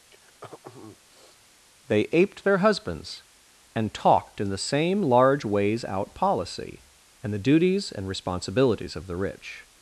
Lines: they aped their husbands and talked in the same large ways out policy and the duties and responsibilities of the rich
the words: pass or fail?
pass